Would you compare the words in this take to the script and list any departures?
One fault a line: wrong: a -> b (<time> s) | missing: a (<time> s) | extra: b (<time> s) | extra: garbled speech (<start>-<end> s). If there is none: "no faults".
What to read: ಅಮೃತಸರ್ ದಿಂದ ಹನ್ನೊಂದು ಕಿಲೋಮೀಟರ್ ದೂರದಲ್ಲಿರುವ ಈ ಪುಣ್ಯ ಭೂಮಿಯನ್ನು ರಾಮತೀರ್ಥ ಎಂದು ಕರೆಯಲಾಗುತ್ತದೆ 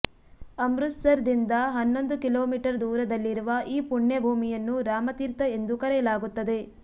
no faults